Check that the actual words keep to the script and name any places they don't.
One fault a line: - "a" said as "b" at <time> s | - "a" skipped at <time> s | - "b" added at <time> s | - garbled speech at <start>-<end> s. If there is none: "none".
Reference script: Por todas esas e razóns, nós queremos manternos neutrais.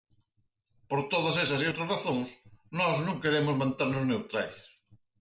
- "outras" added at 1.7 s
- "non" added at 3.1 s